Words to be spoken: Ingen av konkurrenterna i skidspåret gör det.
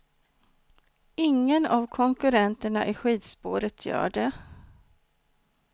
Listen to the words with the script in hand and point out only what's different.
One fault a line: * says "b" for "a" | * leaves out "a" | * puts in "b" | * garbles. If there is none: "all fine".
all fine